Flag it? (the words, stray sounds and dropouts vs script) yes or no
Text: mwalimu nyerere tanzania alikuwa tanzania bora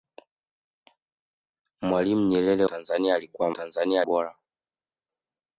no